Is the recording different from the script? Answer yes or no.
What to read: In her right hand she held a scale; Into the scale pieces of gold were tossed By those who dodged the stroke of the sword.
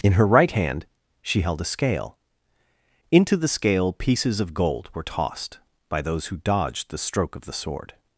no